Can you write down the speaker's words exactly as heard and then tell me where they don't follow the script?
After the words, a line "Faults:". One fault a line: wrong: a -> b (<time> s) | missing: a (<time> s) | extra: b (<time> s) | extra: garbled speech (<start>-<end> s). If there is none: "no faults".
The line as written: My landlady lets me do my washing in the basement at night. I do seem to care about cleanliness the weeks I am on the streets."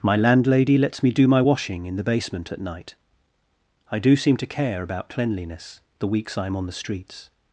My landlady lets me do my washing in the basement at night. I do seem to care about cleanliness the weeks I am on the streets."
Faults:
no faults